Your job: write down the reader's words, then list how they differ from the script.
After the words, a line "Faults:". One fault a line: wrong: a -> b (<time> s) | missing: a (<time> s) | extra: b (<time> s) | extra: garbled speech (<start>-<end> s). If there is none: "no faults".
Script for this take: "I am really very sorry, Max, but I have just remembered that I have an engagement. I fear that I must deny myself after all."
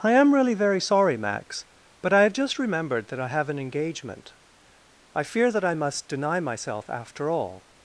"I am really very sorry, Max, but I have just remembered that I have an engagement. I fear that I must deny myself after all."
Faults:
no faults